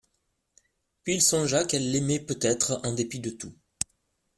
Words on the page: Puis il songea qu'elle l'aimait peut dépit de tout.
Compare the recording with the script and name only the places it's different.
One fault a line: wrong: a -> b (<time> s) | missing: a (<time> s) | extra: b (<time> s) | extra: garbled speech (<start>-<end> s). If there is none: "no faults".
extra: être en (2.4 s)